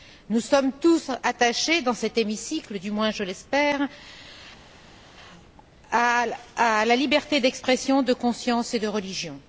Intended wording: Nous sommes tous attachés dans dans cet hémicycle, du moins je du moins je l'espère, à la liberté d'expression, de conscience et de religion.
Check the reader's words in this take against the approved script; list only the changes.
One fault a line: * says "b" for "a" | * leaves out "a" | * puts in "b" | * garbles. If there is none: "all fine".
* leaves out "dans"
* leaves out "du moins je"